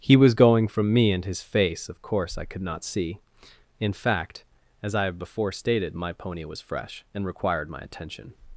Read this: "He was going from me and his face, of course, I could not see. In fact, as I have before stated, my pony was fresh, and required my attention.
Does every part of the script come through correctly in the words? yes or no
yes